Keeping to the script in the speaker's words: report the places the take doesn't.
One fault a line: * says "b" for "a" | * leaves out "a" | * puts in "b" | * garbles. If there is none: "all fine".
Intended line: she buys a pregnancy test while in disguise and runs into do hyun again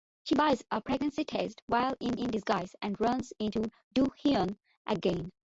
* puts in "in"